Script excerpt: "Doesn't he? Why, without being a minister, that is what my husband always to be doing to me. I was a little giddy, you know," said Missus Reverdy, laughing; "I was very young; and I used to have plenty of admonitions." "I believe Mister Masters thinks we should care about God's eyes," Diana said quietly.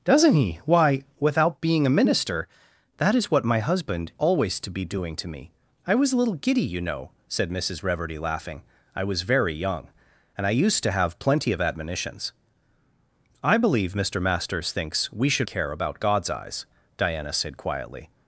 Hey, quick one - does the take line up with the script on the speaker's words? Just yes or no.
yes